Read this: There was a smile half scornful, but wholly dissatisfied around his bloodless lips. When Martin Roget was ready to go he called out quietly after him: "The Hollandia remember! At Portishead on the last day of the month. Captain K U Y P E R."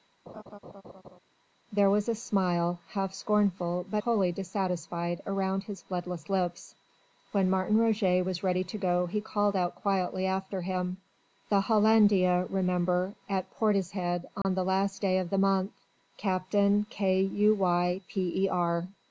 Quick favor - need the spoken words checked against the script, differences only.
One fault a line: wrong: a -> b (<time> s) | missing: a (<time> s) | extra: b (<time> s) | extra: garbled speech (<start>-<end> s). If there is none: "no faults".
no faults